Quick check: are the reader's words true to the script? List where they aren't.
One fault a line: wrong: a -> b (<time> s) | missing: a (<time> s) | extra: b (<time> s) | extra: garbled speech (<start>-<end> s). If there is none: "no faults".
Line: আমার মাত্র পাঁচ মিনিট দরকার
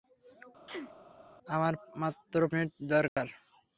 missing: পাঁচ (2.4 s)